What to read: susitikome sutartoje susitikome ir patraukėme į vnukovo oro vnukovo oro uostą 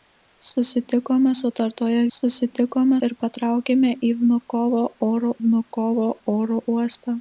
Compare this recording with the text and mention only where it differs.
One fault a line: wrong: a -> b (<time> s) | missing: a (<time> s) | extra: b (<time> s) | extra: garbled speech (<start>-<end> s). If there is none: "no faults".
no faults